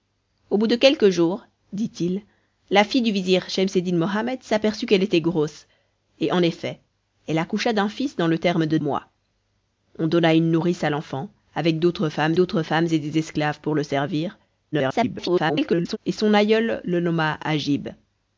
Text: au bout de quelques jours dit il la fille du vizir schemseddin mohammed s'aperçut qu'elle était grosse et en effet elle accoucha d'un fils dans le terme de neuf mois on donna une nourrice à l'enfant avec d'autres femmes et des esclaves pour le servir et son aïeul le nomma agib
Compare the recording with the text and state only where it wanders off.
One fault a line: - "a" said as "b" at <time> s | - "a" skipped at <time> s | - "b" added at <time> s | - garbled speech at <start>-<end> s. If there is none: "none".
- "neuf" skipped at 8.8 s
- "d'autres femmes" added at 12.3 s
- garbled speech at 14.7-16.0 s